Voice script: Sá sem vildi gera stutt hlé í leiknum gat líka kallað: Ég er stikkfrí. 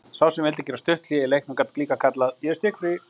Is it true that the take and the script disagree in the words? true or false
false